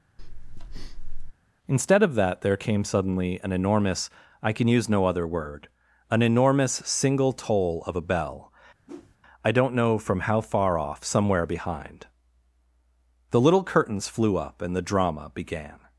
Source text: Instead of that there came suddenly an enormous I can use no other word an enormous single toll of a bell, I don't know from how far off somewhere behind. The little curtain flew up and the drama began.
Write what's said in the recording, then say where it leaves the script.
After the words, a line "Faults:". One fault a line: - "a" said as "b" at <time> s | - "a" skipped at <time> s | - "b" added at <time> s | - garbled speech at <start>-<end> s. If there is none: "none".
Instead of that there came suddenly an enormous I can use no other word an enormous single toll of a bell, I don't know from how far off somewhere behind. The little curtains flew up and the drama began.
Faults:
- "curtain" said as "curtains" at 13.6 s